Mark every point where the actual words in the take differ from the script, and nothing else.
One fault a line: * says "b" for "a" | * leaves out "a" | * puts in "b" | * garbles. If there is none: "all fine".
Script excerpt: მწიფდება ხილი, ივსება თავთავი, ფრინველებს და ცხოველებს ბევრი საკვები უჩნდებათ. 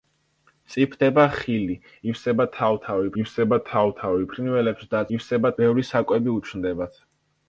* puts in "ივსება თავთავი"
* says "ივსება" for "ცხოველებს"